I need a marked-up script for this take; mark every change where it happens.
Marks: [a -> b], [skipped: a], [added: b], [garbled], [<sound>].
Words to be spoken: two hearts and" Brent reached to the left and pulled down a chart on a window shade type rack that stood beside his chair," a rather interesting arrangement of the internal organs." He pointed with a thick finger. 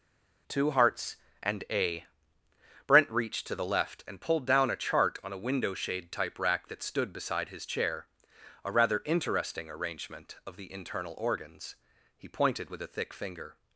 two hearts and" [added: a] Brent reached to the left and pulled down a chart on a window shade type rack that stood beside his chair," a rather interesting arrangement of the internal organs." He pointed with a thick finger.